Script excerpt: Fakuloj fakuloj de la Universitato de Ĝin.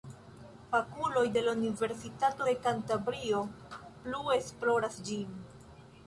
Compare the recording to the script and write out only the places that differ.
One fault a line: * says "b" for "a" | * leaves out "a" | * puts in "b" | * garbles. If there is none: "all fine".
* leaves out "fakuloj"
* puts in "Kantabrio plu esploras"